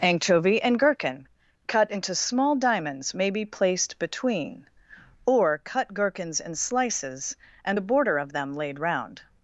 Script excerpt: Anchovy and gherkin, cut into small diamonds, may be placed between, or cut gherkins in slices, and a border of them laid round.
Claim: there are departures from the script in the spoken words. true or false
false